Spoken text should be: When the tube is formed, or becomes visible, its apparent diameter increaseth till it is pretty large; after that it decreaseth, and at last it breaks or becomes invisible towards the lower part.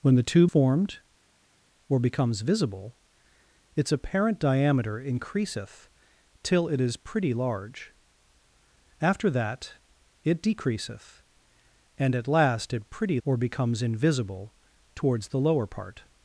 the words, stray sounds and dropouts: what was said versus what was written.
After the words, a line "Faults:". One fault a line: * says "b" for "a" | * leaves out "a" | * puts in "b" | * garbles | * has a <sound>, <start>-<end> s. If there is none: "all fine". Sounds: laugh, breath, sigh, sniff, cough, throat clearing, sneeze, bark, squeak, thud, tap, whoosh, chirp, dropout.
When the tube formed, or becomes visible, its apparent diameter increaseth till it is pretty large; after that it decreaseth, and at last it pretty or becomes invisible towards the lower part.
Faults:
* leaves out "is"
* says "pretty" for "breaks"